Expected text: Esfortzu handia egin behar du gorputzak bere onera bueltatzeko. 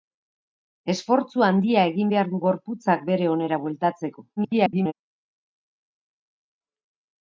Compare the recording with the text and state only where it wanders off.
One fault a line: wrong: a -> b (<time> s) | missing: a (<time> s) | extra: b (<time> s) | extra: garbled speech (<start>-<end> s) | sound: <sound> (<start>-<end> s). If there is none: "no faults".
extra: garbled speech (4.4-4.9 s)